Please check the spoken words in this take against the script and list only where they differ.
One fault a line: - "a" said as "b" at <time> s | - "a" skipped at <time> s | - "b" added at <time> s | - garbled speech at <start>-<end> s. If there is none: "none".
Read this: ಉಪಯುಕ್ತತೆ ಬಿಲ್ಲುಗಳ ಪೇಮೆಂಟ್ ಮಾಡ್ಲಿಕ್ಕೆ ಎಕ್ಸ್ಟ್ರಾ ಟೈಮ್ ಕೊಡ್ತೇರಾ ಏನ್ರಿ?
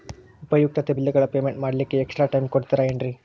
none